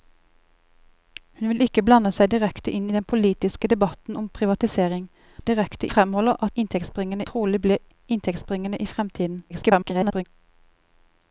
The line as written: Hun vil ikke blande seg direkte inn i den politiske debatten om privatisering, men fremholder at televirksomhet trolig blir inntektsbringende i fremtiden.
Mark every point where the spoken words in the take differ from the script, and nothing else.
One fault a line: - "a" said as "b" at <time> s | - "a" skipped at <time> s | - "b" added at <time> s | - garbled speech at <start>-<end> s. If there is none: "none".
- "men" said as "direkte" at 5.5 s
- "televirksomhet" said as "inntektsbringende" at 6.6 s
- garbled speech at 9.5-10.2 s